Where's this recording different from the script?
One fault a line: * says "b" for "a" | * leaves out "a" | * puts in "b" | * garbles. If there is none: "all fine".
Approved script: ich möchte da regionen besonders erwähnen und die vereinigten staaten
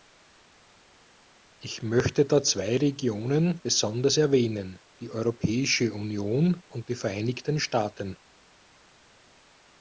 * puts in "zwei"
* puts in "die europäische union"